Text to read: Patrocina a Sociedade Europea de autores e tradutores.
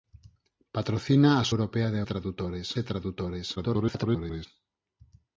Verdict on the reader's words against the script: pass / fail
fail